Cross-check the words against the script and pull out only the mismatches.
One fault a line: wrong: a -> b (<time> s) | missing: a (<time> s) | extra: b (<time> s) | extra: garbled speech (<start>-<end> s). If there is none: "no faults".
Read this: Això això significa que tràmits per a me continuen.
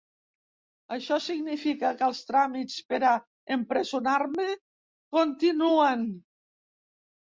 missing: això (1.2 s)
extra: els (2.1 s)
extra: empresonar (3.6 s)